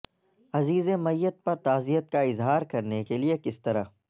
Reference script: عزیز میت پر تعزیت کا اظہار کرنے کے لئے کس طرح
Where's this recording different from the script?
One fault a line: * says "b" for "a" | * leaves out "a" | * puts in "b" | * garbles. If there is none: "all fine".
all fine